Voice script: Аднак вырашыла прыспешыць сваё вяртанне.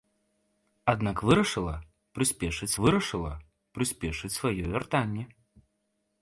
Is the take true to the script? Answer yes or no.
no